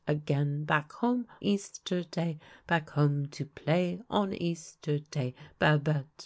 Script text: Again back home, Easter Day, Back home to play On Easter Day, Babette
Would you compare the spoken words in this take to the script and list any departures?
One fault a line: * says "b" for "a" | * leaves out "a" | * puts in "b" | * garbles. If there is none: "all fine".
all fine